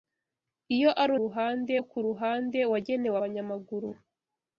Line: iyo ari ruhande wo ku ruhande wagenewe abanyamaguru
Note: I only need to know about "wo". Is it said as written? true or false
true